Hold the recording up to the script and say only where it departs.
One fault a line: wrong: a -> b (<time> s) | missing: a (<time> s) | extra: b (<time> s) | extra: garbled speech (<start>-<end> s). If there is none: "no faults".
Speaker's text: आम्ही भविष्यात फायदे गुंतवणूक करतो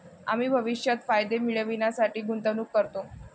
extra: मिळविण्यासाठी (1.4 s)